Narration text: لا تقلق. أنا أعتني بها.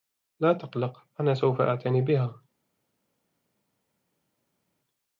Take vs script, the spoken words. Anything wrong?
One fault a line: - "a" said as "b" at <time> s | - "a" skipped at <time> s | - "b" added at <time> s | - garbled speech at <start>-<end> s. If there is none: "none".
- "سوف" added at 1.3 s